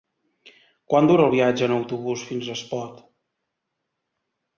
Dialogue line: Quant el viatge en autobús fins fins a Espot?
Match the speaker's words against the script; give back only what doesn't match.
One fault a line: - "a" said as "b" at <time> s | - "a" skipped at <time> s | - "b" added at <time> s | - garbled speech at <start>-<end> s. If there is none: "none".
- "dura" added at 1.1 s
- "fins" skipped at 2.5 s